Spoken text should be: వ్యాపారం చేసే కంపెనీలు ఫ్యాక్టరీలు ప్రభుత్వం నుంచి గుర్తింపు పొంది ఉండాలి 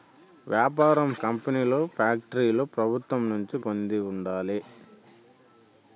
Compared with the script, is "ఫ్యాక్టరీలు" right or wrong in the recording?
right